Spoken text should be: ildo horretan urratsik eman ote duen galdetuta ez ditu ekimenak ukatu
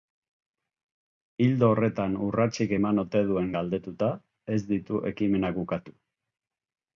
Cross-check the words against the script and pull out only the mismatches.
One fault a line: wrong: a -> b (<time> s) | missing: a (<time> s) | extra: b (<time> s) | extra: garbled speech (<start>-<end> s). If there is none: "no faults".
no faults